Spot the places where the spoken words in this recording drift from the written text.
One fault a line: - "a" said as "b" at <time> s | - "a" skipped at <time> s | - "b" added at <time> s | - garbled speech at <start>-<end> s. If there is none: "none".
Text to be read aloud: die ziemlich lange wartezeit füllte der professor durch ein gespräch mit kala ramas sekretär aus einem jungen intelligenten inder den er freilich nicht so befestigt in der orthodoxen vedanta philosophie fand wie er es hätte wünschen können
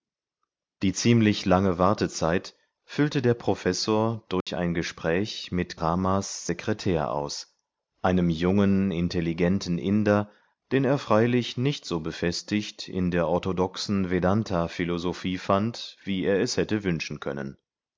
- "kala" skipped at 5.8 s